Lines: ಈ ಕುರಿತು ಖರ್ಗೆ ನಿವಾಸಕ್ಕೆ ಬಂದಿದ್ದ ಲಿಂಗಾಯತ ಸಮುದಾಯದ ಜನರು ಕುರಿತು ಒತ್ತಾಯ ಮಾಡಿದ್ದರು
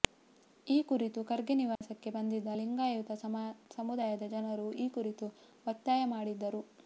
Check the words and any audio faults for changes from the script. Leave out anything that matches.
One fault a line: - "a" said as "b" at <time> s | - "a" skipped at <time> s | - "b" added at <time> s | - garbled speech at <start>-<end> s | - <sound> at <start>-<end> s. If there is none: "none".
- dropout at 1.8-1.8 s
- "ಈ" added at 4.8 s